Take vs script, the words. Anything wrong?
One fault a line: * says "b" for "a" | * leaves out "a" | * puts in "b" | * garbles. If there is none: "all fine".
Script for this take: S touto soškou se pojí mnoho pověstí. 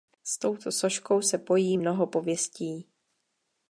all fine